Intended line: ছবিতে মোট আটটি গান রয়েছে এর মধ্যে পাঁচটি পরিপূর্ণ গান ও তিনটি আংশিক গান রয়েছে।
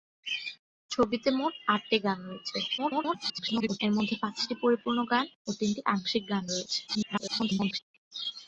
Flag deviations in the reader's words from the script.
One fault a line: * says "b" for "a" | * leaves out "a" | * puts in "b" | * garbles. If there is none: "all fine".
* garbles
* garbles